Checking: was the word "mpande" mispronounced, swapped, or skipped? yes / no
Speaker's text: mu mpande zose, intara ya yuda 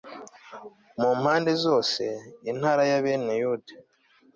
no